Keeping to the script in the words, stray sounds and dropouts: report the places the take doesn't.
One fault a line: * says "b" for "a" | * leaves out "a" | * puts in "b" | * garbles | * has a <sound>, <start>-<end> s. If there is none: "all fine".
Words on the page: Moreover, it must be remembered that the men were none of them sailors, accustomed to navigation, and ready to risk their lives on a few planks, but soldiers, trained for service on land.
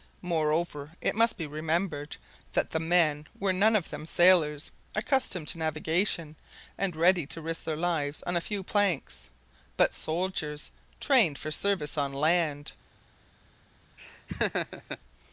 * has a laugh, 14.0-15.0 s